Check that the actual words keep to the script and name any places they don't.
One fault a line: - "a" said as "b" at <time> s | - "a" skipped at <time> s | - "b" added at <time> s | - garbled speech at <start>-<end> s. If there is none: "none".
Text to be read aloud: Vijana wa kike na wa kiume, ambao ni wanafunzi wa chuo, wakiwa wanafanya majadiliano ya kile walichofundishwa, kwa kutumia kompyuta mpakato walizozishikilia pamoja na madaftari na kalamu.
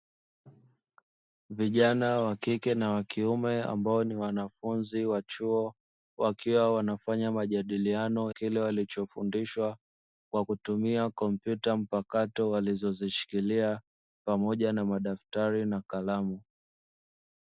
- "ya" skipped at 8.3 s